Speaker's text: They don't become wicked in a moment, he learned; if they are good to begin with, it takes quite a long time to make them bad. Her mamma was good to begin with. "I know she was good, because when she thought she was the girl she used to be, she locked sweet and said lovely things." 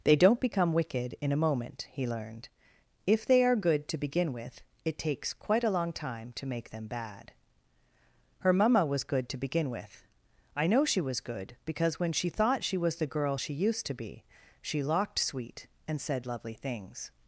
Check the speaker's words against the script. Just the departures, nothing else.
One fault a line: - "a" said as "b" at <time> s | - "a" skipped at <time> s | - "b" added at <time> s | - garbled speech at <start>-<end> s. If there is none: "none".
none